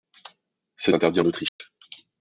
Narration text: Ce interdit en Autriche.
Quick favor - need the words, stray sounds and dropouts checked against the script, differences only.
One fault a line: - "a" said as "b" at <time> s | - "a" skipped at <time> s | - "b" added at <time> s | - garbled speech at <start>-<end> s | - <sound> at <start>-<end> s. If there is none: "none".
- dropout at 1.5-1.6 s